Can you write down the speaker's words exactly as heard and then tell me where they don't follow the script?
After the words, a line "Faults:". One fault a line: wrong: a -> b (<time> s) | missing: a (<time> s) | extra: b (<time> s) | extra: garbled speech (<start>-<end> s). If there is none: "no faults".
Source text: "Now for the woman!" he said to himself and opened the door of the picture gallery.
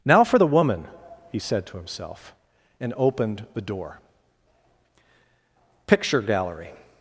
"Now for the woman!" he said to himself and opened the door picture gallery.
Faults:
missing: of the (4.0 s)